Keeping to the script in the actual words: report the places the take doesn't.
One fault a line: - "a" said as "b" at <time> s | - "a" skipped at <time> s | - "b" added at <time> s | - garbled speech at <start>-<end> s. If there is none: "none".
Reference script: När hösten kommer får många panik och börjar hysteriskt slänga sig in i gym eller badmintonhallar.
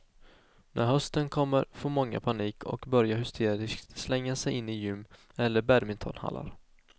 none